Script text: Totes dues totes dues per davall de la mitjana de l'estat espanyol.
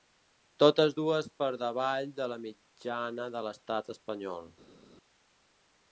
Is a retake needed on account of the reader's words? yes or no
yes